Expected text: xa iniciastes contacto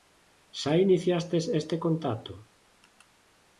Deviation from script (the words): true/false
true